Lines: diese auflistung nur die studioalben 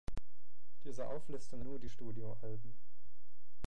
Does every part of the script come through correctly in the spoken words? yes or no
yes